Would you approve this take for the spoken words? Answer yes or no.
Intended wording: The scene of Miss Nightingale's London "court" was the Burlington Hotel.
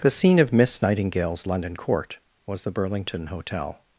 yes